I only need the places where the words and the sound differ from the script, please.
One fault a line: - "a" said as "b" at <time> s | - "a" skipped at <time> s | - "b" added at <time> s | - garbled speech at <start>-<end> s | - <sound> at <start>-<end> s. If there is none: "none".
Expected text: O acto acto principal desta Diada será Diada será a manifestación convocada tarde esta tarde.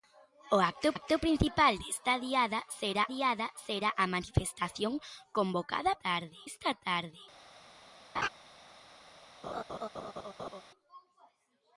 - laugh at 8.2-8.3 s
- laugh at 9.4-10.6 s